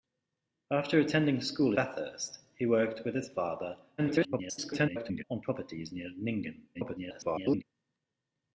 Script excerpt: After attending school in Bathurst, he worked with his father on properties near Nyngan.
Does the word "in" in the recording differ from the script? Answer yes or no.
yes